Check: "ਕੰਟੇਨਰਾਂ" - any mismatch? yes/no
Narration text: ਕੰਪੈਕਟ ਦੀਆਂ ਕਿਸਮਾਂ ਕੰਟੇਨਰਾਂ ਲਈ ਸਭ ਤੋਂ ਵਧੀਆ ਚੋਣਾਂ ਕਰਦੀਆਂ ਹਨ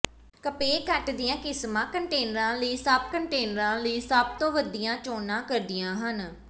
no